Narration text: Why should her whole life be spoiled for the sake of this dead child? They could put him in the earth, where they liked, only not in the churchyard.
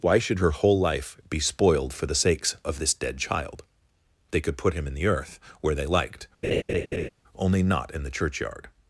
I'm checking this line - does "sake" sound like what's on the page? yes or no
no